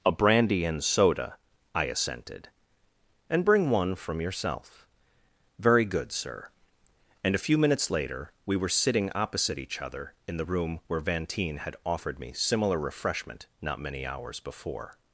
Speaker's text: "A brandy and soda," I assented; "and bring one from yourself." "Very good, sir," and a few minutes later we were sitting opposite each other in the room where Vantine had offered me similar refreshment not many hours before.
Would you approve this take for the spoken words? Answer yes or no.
yes